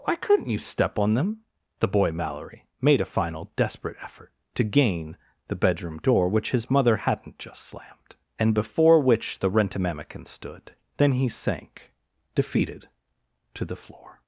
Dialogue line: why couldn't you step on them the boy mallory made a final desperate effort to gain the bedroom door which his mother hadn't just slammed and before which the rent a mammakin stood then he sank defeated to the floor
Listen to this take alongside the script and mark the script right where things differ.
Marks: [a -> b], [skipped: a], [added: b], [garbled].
why couldn't you step on them the boy mallory made a final desperate effort to gain the bedroom door which his mother hadn't just slammed and before which the rent a mammakin stood then he sank defeated to the floor